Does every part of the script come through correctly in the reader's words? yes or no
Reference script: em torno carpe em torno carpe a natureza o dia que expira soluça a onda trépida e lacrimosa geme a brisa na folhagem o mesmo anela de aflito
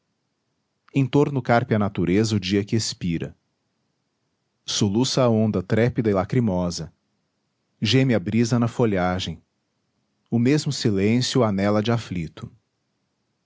no